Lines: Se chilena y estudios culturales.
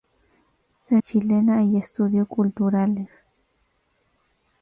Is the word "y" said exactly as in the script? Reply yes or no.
yes